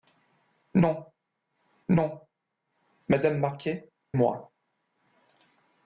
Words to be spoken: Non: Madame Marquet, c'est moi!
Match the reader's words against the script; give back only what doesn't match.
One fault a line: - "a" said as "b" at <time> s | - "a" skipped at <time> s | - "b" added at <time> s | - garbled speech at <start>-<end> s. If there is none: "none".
- "non" added at 1.9 s
- "c'est" skipped at 3.9 s